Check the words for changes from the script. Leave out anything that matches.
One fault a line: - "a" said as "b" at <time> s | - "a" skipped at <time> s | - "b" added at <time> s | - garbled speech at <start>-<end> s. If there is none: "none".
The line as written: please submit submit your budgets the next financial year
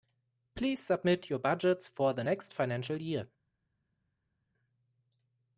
- "submit" skipped at 1.3 s
- "for" added at 1.9 s